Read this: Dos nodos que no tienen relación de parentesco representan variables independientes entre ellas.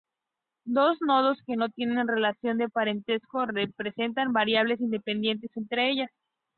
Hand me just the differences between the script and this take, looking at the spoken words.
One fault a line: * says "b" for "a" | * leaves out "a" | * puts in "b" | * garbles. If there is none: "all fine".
all fine